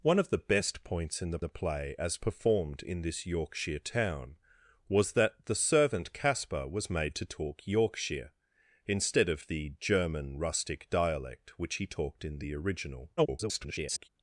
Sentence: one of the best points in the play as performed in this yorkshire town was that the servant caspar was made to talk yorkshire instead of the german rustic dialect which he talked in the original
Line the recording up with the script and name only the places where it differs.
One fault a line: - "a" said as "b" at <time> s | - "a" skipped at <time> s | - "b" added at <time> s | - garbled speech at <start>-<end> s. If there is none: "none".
- "the" added at 1.4 s
- garbled speech at 13.2-14.1 s